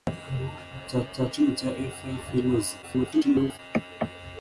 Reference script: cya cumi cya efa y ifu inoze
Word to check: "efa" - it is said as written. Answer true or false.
true